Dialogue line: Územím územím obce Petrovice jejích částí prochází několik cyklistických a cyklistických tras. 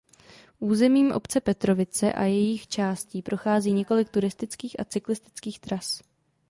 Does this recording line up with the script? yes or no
no